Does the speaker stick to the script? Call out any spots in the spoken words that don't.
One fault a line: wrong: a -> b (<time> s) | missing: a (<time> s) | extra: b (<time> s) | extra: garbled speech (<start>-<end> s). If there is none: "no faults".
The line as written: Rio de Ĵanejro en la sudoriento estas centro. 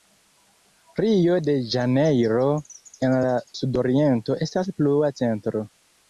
extra: plua (4.8 s)